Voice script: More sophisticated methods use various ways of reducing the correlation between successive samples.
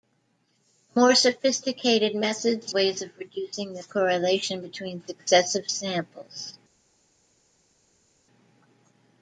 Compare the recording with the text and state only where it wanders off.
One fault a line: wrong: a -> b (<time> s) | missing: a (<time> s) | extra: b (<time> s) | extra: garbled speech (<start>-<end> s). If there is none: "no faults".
missing: use various (2.7 s)